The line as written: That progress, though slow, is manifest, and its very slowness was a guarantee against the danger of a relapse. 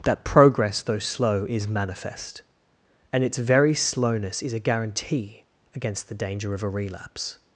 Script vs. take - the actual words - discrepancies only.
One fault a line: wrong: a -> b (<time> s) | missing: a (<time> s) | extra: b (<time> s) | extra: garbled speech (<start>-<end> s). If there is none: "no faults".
wrong: was -> is (4.4 s)